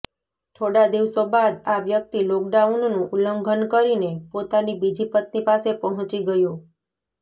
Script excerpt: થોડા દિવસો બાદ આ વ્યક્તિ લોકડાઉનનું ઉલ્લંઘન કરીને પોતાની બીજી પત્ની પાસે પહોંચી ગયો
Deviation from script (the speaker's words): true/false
false